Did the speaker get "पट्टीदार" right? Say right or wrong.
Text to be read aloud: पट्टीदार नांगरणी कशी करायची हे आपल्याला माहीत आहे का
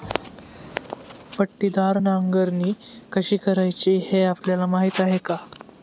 right